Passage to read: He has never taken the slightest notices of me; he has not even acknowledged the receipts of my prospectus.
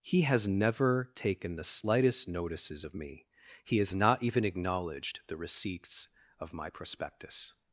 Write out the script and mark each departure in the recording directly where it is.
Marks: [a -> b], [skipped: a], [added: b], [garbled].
He has never taken the slightest notices of me; he has not even acknowledged the receipts of my prospectus.